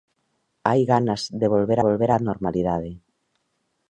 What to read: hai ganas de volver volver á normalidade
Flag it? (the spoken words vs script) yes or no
no